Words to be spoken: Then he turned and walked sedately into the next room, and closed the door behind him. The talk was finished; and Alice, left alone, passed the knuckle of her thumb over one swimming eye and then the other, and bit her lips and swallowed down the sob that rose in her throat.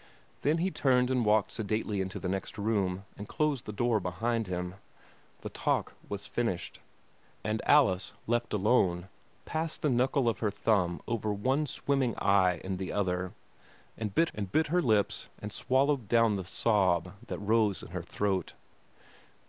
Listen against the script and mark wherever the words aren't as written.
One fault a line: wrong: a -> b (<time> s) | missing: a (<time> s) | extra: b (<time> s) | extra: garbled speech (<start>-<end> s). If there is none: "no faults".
missing: then (12.8 s)
extra: and bit (14.3 s)